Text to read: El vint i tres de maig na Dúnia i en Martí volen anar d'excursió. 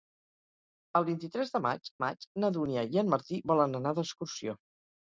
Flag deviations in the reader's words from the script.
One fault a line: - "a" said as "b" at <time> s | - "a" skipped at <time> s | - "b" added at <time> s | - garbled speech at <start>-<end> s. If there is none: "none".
- "maig" added at 2.0 s